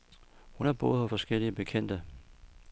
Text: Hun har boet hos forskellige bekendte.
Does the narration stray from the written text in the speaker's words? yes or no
no